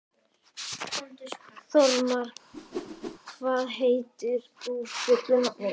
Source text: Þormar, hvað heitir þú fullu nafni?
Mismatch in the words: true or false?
false